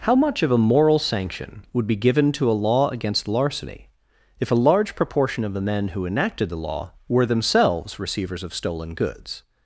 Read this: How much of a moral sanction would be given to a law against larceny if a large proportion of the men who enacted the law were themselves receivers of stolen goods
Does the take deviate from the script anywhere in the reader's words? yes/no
no